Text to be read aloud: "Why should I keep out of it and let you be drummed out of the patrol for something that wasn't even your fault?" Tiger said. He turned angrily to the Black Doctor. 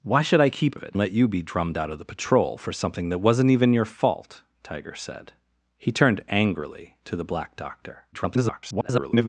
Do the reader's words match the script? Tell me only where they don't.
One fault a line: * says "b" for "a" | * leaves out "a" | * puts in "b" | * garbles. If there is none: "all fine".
* leaves out "out"
* leaves out "and"
* garbles